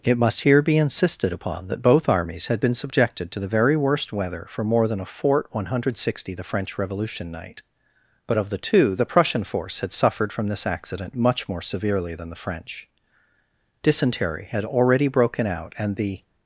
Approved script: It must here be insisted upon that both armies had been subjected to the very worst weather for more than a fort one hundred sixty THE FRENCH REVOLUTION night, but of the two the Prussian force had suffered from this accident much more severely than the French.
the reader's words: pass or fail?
fail